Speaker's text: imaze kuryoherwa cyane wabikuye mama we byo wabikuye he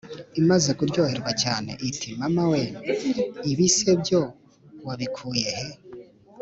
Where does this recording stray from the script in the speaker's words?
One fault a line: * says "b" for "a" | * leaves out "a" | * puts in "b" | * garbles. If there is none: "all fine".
* says "iti" for "wabikuye"
* puts in "ibi se"